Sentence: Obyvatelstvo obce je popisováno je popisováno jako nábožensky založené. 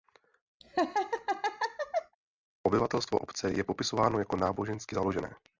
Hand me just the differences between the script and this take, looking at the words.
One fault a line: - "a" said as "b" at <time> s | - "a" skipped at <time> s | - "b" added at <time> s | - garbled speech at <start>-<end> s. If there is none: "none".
- "je popisováno" skipped at 4.2 s